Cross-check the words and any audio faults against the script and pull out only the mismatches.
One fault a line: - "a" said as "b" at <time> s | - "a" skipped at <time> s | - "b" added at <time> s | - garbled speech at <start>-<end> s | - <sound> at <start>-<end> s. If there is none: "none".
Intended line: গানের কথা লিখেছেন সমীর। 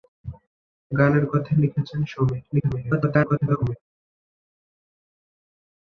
- garbled speech at 2.5-3.8 s